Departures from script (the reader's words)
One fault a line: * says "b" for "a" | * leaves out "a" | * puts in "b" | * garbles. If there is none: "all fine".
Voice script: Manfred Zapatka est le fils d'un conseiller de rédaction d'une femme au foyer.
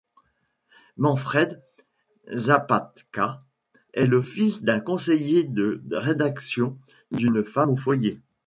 all fine